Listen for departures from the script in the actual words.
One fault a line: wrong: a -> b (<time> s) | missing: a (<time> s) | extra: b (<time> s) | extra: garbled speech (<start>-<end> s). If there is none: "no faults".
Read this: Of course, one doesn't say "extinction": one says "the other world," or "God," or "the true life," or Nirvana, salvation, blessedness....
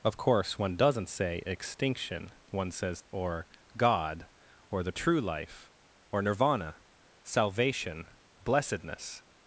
missing: the other world (3.0 s)